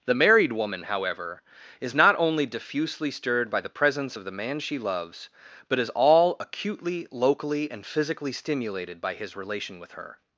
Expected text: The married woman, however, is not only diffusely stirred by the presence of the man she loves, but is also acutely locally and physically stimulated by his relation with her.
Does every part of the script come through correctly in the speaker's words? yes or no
no